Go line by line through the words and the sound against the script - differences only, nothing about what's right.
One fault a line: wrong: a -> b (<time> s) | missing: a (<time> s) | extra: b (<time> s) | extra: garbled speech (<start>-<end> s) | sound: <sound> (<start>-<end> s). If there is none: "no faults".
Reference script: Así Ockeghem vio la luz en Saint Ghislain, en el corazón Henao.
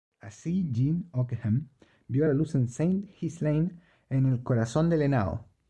extra: Jean (0.7 s)
extra: del (4.9 s)